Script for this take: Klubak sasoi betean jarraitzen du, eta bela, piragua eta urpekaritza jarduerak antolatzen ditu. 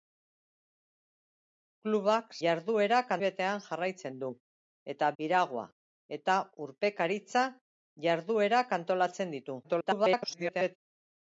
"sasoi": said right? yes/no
no